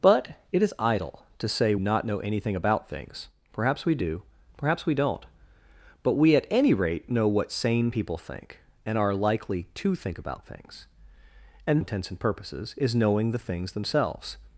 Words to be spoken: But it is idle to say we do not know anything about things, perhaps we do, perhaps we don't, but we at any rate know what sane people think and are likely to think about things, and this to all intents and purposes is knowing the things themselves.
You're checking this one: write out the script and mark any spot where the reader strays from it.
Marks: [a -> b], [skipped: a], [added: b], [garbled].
But it is idle to say [skipped: we do] not know anything about things, perhaps we do, perhaps we don't, but we at any rate know what sane people think and are likely to think about things, and [skipped: this to all] intents and purposes is knowing the things themselves.